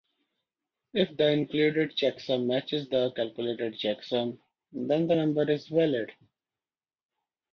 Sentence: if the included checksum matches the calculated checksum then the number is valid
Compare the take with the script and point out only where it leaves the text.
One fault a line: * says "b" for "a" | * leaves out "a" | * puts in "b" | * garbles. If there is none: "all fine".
all fine